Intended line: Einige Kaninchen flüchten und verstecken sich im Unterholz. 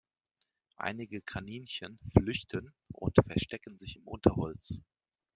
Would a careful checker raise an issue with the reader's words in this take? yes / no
no